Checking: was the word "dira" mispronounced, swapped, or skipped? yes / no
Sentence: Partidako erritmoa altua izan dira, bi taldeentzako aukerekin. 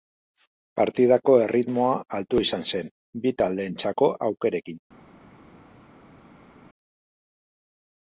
yes